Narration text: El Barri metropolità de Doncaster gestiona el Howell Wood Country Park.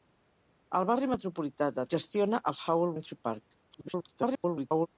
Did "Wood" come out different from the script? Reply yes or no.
yes